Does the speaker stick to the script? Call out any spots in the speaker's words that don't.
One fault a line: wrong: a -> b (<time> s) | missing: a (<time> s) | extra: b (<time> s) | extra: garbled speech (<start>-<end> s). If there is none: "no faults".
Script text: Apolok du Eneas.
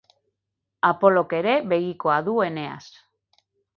extra: ere begikoa (1.4 s)